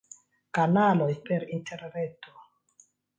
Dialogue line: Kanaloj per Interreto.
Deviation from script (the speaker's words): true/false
false